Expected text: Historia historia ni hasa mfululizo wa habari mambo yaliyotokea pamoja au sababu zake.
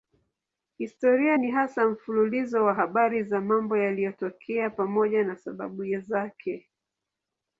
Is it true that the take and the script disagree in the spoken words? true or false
true